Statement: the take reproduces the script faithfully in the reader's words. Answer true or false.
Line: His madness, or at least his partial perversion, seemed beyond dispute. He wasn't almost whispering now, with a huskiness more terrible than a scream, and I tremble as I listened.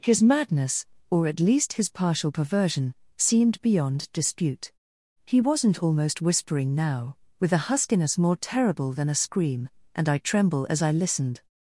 true